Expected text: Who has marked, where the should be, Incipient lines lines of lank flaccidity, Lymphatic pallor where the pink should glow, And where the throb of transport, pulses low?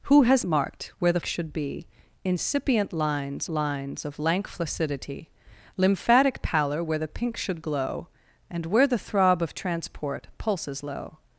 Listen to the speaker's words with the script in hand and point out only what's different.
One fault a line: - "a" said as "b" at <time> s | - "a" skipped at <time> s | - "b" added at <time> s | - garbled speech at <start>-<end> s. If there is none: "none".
none